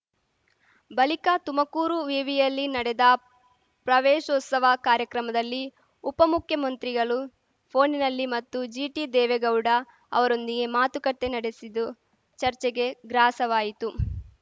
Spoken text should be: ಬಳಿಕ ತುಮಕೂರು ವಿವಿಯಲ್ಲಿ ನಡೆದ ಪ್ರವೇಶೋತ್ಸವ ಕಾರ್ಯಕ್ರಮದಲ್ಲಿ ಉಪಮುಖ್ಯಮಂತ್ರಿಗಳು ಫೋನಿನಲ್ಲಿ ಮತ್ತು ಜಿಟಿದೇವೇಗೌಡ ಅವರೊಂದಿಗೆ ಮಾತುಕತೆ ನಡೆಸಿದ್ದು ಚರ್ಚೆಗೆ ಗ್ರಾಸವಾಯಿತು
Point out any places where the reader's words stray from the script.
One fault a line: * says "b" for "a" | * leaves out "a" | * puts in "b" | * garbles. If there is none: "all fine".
all fine